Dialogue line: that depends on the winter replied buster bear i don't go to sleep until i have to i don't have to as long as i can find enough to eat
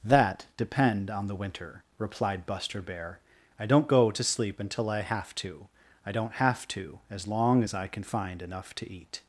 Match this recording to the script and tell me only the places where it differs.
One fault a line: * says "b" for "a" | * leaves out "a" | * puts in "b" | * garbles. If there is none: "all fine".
* says "depend" for "depends"